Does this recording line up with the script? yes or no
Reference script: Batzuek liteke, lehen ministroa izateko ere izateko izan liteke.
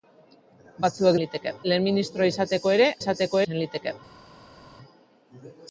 yes